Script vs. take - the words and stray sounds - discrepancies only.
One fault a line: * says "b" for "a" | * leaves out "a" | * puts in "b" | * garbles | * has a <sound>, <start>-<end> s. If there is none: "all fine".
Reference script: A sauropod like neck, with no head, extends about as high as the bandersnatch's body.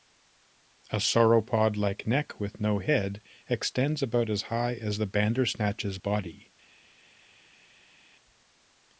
all fine